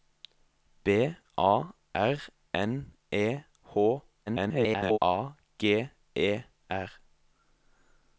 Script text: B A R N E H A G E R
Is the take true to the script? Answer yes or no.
no